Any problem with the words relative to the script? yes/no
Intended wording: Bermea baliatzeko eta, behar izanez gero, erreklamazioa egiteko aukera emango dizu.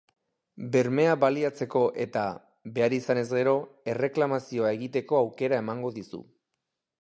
no